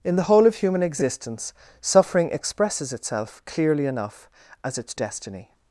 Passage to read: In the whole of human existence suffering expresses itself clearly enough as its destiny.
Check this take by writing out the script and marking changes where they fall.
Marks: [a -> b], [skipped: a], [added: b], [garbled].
In the whole of human existence suffering expresses itself clearly enough as its destiny.